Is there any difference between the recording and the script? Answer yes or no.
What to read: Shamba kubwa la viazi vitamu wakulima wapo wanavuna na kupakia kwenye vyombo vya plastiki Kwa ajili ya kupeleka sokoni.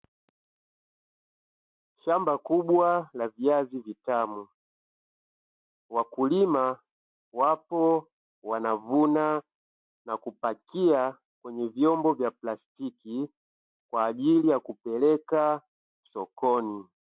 no